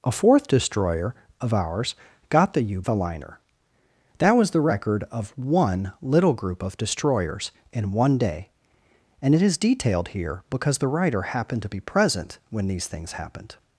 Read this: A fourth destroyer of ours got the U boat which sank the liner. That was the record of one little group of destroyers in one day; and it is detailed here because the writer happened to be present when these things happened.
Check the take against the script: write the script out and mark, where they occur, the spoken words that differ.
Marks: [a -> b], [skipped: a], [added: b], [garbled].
A fourth destroyer of ours got the U [skipped: boat which sank] the liner. That was the record of one little group of destroyers in one day; and it is detailed here because the writer happened to be present when these things happened.